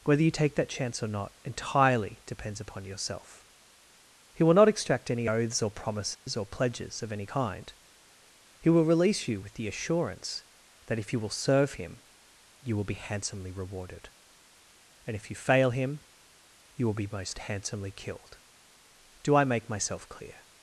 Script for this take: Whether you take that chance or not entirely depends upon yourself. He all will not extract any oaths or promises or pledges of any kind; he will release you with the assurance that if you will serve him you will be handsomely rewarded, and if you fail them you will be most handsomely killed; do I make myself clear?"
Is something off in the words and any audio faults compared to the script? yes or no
yes